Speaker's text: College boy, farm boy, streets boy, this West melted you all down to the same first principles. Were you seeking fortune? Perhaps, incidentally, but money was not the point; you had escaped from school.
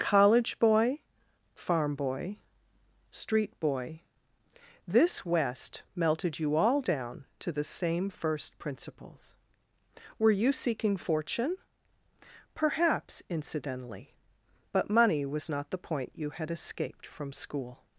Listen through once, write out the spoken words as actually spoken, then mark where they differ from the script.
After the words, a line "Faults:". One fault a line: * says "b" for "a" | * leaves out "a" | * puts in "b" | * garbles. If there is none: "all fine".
College boy, farm boy, street boy, this West melted you all down to the same first principles. Were you seeking fortune? Perhaps, incidentally, but money was not the point; you had escaped from school.
Faults:
* says "street" for "streets"